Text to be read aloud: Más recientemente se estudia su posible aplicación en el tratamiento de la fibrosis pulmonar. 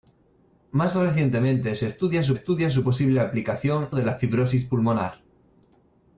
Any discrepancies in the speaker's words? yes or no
yes